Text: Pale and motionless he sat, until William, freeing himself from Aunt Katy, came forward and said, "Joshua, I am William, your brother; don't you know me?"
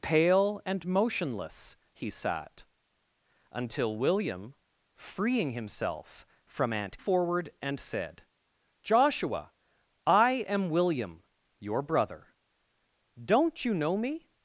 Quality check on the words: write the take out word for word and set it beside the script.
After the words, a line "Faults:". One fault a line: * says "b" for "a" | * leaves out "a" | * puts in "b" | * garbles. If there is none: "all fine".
Pale and motionless he sat, until William, freeing himself from Aunt Forward and said, "Joshua, I am William, your brother; don't you know me?"
Faults:
* leaves out "Katy came"